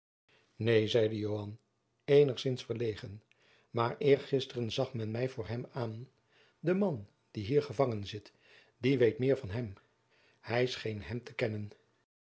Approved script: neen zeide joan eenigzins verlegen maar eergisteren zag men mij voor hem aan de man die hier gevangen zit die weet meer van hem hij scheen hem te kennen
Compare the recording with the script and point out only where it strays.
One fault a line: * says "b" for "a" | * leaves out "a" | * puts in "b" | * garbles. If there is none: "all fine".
all fine